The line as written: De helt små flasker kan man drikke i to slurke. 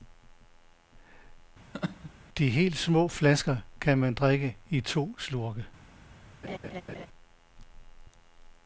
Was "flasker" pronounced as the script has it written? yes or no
yes